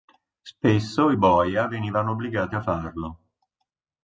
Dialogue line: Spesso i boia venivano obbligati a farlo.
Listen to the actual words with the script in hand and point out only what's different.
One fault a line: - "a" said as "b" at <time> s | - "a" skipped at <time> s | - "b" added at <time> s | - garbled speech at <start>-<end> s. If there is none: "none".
none